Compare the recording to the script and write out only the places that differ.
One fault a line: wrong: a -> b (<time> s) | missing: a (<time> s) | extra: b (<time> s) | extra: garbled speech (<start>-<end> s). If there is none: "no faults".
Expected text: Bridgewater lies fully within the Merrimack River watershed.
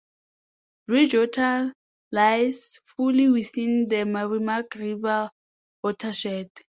no faults